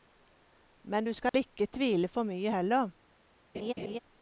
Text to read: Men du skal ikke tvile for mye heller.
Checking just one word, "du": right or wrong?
right